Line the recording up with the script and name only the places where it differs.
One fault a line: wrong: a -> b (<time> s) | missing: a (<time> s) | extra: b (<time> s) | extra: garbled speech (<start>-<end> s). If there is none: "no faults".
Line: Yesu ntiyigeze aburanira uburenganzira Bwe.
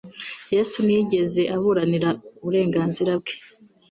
no faults